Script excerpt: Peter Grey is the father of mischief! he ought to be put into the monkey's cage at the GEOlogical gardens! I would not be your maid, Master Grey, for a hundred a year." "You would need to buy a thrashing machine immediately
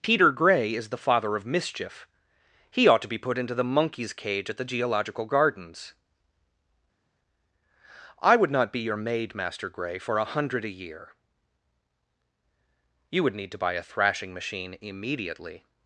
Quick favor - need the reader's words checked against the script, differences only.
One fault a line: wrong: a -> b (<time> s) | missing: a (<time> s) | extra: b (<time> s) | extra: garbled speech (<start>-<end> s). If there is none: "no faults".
no faults